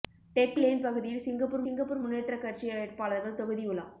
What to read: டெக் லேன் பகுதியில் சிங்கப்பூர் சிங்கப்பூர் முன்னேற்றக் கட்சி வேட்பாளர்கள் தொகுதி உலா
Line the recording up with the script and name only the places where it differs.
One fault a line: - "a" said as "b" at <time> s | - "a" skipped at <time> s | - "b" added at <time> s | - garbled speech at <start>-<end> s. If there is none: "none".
none